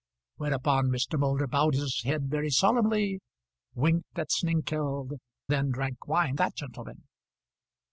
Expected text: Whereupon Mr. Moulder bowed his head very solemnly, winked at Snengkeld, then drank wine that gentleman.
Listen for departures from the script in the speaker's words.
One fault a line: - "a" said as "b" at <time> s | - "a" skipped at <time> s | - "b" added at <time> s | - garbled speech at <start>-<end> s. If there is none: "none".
none